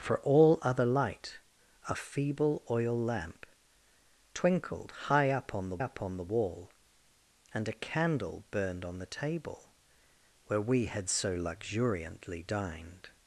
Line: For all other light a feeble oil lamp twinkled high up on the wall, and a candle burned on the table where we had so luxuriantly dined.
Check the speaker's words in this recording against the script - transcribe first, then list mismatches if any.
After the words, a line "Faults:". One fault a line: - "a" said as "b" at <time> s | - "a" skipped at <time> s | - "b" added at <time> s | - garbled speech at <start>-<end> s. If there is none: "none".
For all other light a feeble oil lamp twinkled high up on the up on the wall, and a candle burned on the table where we had so luxuriantly dined.
Faults:
- "up on the" added at 5.8 s